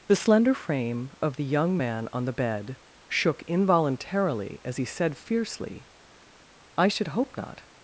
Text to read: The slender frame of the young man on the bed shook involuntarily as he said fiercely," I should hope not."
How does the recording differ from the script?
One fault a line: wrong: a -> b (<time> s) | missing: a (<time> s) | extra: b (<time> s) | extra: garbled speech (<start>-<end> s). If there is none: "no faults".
no faults